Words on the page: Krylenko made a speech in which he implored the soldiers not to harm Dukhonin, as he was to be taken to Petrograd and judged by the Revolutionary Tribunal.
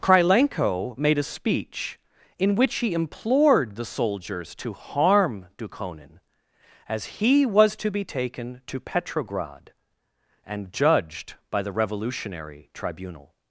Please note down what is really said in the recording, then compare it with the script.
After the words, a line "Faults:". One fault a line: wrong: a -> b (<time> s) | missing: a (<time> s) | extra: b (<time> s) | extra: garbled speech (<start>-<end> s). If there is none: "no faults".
Krylenko made a speech in which he implored the soldiers to harm Dukhonin, as he was to be taken to Petrograd and judged by the Revolutionary Tribunal.
Faults:
missing: not (4.5 s)